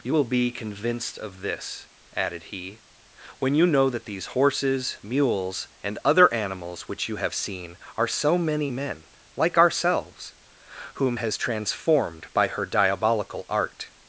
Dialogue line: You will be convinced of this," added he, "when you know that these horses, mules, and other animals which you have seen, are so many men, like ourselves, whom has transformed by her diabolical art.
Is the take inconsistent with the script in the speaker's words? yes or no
no